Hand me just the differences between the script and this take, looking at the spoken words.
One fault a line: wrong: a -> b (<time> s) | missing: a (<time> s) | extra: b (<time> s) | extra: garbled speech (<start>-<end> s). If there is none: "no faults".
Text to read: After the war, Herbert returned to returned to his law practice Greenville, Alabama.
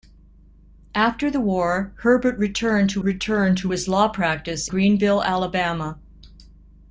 no faults